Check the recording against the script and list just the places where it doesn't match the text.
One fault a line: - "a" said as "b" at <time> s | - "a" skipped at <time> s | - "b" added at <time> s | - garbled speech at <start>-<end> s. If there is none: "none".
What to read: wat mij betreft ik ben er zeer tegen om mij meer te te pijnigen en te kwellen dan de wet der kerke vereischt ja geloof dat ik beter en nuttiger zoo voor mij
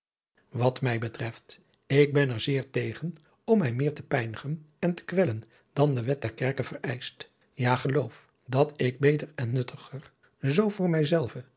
- "te" skipped at 4.0 s